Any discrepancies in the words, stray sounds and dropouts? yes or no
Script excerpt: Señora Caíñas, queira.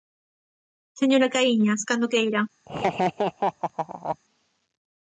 yes